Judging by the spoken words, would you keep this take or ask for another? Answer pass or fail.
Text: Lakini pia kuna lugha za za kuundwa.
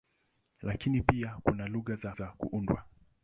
pass